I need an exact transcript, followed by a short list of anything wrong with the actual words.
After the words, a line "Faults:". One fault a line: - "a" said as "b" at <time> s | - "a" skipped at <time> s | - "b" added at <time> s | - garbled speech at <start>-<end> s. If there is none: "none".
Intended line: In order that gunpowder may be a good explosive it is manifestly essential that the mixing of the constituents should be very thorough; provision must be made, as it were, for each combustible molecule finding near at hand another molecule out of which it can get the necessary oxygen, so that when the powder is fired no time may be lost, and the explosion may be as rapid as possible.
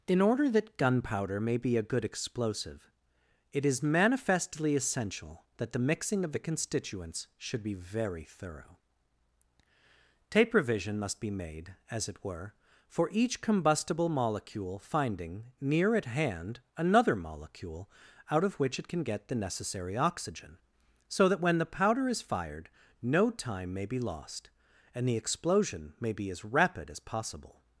In order that gunpowder may be a good explosive it is manifestly essential that the mixing of the constituents should be very thorough; tape revision must be made, as it were, for each combustible molecule finding near at hand another molecule out of which it can get the necessary oxygen, so that when the powder is fired no time may be lost, and the explosion may be as rapid as possible.
Faults:
- "provision" said as "tape revision" at 10.3 s